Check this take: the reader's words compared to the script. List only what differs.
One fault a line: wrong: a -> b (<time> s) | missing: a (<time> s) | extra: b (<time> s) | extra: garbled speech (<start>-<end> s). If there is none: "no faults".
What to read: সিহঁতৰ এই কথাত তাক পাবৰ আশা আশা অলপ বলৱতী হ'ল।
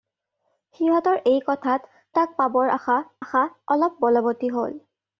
no faults